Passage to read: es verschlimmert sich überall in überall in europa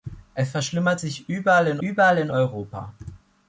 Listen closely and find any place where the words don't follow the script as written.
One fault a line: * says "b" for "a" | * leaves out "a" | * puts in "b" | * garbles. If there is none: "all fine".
all fine